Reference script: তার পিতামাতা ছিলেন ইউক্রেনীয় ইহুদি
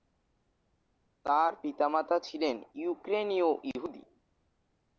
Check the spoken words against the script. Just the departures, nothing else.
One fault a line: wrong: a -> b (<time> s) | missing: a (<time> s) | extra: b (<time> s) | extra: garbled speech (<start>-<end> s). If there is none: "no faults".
no faults